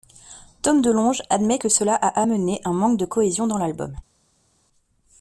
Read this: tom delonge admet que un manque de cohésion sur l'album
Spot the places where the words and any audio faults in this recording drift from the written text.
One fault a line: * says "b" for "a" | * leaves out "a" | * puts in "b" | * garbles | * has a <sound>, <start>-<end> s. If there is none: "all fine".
* puts in "cela a amené"
* says "dans" for "sur"